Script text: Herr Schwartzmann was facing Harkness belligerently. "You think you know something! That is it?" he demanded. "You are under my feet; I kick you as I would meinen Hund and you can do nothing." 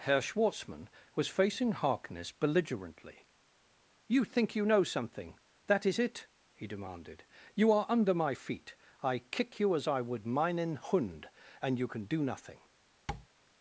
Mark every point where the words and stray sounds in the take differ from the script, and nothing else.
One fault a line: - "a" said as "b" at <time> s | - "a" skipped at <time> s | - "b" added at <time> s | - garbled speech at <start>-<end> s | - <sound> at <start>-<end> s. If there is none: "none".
- tap at 13.1-13.3 s